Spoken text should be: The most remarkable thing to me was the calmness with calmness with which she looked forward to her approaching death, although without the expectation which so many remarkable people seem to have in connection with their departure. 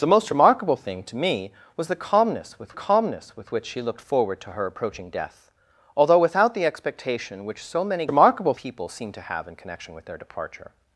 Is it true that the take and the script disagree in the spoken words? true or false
false